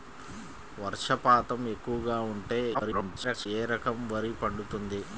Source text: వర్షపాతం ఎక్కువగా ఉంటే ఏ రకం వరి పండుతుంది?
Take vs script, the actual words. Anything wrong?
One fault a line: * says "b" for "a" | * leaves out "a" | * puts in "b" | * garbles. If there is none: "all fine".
* garbles